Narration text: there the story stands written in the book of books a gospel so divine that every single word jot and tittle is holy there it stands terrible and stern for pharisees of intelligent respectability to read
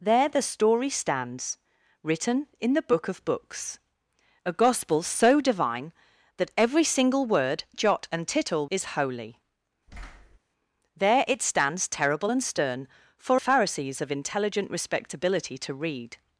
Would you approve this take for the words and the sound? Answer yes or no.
no